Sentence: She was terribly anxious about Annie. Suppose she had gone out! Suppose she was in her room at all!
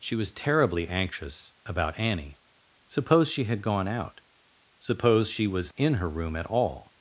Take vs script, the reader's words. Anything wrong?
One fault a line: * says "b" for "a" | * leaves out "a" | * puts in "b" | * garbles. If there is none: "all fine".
all fine